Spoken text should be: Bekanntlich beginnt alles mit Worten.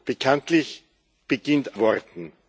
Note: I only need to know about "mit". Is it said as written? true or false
false